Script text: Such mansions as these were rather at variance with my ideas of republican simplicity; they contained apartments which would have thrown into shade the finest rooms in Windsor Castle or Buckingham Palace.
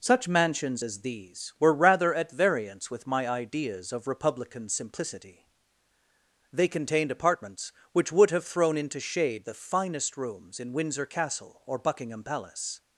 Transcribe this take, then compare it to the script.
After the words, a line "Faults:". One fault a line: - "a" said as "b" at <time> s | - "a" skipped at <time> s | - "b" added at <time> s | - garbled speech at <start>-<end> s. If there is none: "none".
Such mansions as these were rather at variance with my ideas of republican simplicity; they contained apartments which would have thrown into shade the finest rooms in Windsor Castle or Buckingham Palace.
Faults:
none